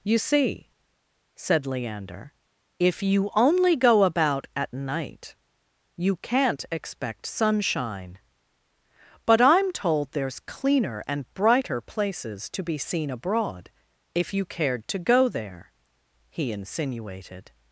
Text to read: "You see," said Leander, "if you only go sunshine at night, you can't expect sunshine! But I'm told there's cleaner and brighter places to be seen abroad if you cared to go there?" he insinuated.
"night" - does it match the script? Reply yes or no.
yes